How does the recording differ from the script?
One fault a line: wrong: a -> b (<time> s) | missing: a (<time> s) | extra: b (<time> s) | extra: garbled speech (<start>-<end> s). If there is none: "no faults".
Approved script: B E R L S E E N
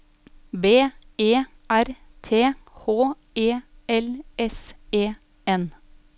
extra: T H E (2.2 s)
missing: E (5.1 s)